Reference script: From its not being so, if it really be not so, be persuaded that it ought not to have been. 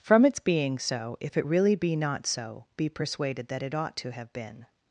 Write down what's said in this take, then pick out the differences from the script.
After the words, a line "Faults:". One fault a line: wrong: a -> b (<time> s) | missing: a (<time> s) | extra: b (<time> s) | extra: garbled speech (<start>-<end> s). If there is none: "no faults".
From its being so, if it really be not so, be persuaded that it ought to have been.
Faults:
missing: not (0.4 s)
missing: not (4.0 s)